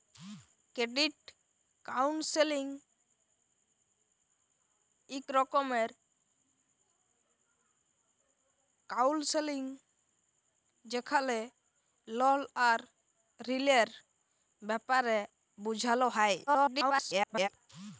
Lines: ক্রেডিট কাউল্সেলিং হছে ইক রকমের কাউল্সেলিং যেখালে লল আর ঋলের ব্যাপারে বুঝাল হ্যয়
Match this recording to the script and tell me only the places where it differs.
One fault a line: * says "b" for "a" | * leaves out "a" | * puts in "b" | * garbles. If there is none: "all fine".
* leaves out "হছে"
* garbles